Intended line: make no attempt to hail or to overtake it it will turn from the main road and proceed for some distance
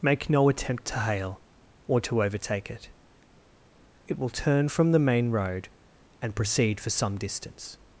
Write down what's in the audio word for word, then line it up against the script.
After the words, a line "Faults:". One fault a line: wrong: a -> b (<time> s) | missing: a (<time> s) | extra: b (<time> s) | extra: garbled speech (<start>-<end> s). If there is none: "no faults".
make no attempt to hail or to overtake it it will turn from the main road and proceed for some distance
Faults:
no faults